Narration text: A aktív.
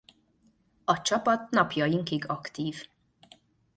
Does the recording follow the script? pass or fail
fail